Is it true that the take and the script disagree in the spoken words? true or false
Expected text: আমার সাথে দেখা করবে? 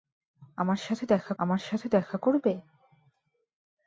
true